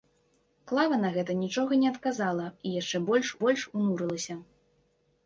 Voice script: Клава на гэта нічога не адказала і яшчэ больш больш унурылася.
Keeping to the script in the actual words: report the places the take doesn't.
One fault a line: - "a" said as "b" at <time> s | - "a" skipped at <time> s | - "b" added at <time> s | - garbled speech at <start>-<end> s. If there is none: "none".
none